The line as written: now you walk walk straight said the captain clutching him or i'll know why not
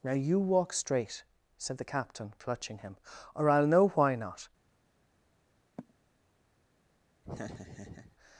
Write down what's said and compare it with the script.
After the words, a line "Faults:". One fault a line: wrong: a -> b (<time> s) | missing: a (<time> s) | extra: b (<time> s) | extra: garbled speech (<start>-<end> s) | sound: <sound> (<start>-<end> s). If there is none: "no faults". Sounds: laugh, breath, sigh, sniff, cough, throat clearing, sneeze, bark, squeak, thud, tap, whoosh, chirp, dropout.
now you walk straight said the captain clutching him or i'll know why not
Faults:
missing: walk (0.7 s)
sound: sigh (5.8-5.9 s)
sound: laugh (7.2-8.2 s)